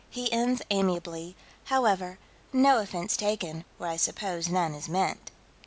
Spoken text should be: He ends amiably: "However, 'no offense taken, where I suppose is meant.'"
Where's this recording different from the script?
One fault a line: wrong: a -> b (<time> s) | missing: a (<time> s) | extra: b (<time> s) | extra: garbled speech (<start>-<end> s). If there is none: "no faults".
extra: none (4.5 s)